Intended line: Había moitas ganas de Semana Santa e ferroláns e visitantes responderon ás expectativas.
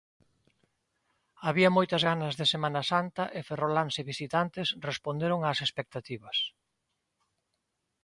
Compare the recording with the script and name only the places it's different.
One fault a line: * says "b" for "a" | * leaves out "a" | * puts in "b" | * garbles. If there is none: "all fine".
all fine